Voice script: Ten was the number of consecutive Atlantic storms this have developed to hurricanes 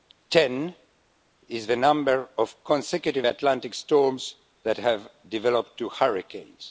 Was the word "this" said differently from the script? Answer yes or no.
yes